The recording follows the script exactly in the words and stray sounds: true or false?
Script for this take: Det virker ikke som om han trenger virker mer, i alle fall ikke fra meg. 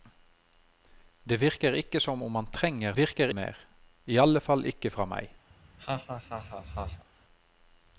false